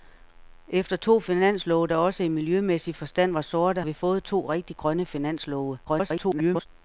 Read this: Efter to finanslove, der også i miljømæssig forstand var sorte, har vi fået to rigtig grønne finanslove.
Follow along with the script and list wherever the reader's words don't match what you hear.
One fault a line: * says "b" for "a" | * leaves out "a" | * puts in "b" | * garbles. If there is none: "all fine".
* leaves out "har"
* garbles